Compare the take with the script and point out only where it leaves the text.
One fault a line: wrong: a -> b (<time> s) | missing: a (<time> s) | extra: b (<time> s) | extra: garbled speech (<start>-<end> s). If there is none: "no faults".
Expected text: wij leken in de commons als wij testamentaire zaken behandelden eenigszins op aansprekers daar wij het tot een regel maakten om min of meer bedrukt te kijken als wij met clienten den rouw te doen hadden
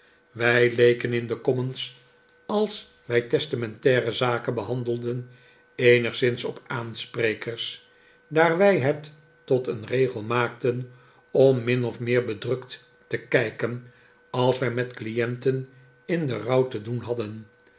extra: in (16.1 s)